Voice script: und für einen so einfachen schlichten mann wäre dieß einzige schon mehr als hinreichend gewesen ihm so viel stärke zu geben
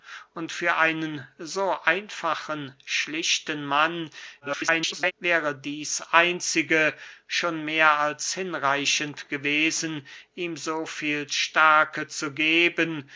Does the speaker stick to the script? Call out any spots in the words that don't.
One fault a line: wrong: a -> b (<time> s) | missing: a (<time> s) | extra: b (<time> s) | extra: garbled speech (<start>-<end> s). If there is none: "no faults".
extra: garbled speech (4.4-5.1 s)